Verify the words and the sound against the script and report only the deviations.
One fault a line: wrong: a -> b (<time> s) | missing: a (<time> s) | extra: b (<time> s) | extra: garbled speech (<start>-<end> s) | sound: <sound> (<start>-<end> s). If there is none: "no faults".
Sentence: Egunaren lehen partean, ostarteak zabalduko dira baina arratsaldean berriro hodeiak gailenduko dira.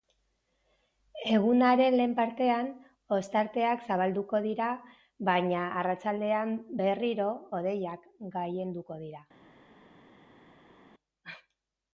no faults